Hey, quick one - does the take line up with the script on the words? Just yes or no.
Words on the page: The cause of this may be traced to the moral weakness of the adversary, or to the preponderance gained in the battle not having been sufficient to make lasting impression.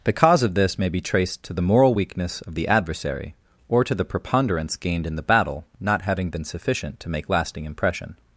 yes